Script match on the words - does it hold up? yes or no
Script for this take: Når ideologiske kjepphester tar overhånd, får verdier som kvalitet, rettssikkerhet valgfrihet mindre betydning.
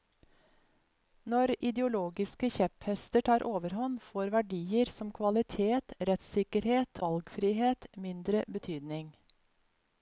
yes